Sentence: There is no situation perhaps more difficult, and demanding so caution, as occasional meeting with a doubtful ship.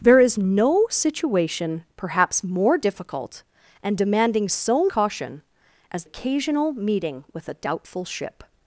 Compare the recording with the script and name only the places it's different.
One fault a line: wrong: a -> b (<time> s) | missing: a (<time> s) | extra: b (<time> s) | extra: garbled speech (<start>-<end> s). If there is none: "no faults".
no faults